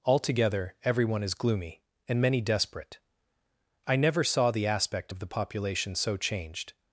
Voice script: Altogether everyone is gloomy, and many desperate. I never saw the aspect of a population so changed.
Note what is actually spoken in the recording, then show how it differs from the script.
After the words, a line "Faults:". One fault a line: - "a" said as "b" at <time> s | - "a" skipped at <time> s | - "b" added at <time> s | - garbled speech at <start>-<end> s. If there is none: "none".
Altogether everyone is gloomy, and many desperate. I never saw the aspect of the population so changed.
Faults:
- "a" said as "the" at 5.2 s